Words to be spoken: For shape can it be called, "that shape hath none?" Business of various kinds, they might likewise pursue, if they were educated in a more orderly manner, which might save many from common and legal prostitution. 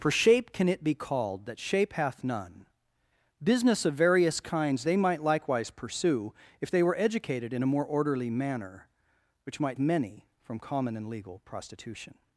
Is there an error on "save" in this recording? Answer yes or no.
yes